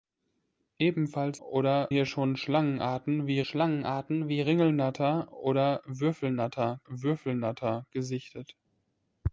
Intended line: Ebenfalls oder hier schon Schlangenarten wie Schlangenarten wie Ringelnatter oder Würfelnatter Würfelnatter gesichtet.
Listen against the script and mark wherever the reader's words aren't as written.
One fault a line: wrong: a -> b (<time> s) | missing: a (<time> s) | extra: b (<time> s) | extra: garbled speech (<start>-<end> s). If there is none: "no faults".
no faults